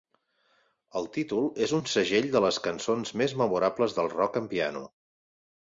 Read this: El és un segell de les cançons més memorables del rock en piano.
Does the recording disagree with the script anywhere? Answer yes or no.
yes